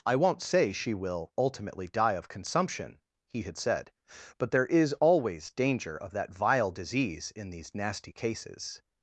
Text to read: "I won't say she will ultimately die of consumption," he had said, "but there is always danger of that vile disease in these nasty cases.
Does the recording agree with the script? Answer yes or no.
yes